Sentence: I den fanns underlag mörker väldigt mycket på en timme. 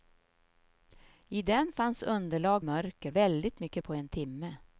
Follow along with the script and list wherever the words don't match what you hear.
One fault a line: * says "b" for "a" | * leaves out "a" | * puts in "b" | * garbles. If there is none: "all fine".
all fine